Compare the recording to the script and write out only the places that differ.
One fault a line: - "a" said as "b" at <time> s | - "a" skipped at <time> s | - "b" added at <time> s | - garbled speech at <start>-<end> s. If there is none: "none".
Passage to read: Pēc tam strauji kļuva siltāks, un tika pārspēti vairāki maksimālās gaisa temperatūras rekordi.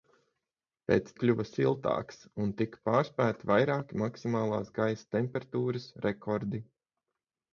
- "tam strauji" skipped at 1.1 s